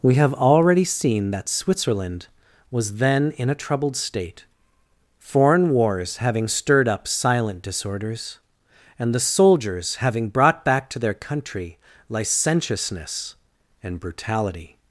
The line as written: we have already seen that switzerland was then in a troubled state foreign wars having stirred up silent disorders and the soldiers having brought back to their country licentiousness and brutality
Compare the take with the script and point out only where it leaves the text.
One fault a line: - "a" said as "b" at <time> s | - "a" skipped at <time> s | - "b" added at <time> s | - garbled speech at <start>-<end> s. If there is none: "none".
none